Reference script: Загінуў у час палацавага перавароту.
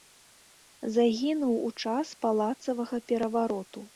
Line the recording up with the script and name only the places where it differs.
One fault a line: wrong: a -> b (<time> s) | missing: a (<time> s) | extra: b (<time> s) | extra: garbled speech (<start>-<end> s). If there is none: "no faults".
no faults